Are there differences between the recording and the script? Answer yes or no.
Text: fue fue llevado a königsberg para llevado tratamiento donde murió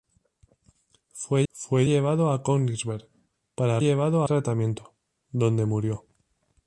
no